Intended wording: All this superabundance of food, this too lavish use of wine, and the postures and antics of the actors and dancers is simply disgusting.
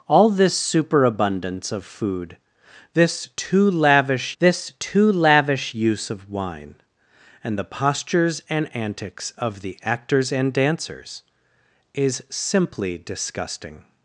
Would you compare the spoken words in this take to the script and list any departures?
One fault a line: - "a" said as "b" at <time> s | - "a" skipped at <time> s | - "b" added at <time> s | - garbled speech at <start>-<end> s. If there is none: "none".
- "this too lavish" added at 4.4 s